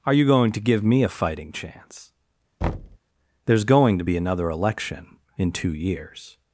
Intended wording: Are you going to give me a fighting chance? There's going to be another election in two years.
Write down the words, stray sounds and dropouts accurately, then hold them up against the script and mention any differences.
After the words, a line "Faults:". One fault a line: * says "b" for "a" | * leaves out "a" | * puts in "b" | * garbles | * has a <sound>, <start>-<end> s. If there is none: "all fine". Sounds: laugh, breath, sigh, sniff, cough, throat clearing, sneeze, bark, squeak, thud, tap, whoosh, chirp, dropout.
Are you going to give me a fighting chance? There's going to be another election in two years.
Faults:
* has a thud, 2.6-3.0 s